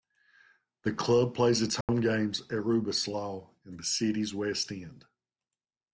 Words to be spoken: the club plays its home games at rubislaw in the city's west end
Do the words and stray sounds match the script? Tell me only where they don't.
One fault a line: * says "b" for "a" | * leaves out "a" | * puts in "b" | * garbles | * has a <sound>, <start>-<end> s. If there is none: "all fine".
* has a dropout, 1.8-1.9 s